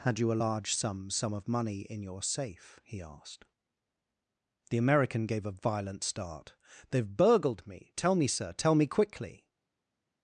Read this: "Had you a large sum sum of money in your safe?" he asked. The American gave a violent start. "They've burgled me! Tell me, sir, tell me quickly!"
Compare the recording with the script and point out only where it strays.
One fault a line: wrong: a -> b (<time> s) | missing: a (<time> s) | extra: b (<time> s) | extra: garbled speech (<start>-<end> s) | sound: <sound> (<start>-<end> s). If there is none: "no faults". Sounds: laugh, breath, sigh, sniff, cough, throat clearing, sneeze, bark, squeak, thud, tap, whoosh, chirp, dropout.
no faults